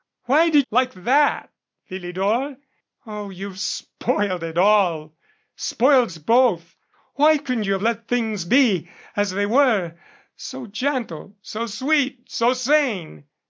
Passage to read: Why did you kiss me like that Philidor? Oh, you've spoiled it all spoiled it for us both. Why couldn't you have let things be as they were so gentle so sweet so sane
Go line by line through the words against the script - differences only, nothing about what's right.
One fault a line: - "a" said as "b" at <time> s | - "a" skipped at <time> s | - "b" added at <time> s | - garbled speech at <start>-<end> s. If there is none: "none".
- "you kiss me" skipped at 0.7 s
- "it for" skipped at 6.1 s